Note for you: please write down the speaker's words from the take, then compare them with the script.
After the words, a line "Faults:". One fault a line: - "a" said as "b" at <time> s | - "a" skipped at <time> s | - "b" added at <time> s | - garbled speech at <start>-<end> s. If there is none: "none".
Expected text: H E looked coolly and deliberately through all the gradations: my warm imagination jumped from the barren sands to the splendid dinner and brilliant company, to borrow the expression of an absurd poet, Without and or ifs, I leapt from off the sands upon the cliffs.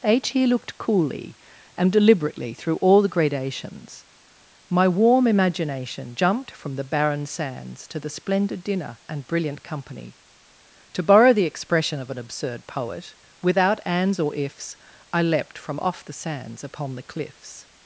H E looked coolly and deliberately through all the gradations: my warm imagination jumped from the barren sands to the splendid dinner and brilliant company, to borrow the expression of an absurd poet, Without ands or ifs, I leapt from off the sands upon the cliffs.
Faults:
- "and" said as "ands" at 13.8 s